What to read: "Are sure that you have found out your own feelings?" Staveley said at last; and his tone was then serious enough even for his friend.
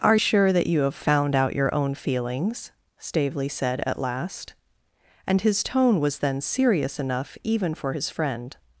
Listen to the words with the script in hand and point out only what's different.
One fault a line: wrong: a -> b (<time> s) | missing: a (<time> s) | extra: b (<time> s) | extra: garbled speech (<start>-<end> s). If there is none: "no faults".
no faults